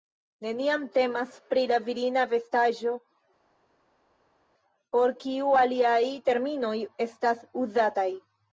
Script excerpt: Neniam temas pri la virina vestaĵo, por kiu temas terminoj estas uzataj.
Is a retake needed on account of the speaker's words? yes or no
yes